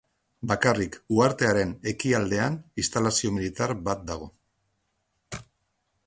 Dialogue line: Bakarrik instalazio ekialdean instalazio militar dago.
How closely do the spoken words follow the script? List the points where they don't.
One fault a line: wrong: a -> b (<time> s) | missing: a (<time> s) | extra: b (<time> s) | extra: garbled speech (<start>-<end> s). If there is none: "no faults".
wrong: instalazio -> uhartearen (1.2 s)
extra: bat (3.9 s)